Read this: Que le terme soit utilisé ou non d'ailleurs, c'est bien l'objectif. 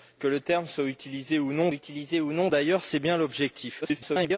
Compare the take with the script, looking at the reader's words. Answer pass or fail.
fail